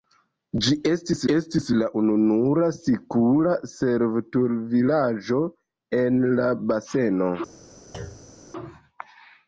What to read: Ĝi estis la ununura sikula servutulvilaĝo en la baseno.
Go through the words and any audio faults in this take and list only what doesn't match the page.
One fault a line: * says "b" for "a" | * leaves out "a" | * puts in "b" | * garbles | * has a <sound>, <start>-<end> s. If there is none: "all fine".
* puts in "estis"
* has a thud, 7.9-8.4 s